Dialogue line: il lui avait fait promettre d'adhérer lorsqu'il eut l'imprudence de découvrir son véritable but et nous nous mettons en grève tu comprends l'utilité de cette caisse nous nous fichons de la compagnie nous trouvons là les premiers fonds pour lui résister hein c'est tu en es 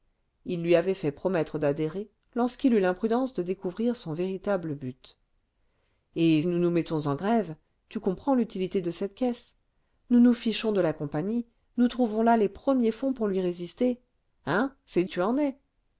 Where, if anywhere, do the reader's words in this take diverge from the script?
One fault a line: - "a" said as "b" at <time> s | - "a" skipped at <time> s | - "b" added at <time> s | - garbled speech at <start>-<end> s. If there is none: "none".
none